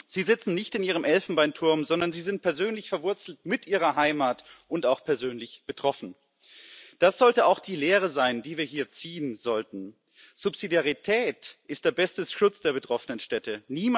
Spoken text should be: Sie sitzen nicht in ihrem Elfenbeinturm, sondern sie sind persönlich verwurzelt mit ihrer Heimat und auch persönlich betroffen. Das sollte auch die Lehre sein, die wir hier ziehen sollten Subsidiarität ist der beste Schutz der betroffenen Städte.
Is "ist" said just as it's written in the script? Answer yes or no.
yes